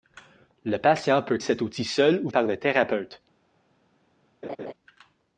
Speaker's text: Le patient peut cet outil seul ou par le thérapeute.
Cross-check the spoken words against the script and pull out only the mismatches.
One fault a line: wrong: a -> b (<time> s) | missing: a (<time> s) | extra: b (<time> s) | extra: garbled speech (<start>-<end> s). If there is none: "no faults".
no faults